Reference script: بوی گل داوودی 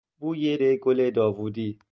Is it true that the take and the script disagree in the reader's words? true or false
false